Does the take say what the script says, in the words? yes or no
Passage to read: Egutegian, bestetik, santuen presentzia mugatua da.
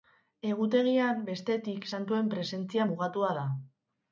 yes